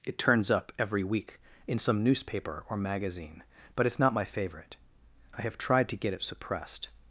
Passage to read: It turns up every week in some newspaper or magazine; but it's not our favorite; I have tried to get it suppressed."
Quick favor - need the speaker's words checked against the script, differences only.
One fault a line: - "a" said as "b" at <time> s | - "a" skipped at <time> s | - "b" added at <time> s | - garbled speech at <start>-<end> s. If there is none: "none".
- "our" said as "my" at 4.1 s